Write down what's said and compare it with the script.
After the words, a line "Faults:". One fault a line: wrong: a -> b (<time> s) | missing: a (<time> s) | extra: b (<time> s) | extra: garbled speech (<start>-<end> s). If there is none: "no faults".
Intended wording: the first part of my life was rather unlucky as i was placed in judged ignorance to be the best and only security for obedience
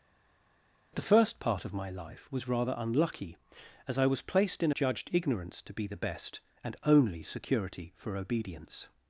the first part of my life was rather unlucky as i was placed in judged ignorance to be the best and only security for obedience
Faults:
no faults